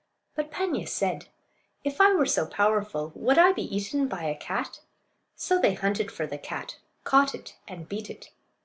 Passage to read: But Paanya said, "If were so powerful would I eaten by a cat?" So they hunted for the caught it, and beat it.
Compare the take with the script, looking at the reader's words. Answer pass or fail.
fail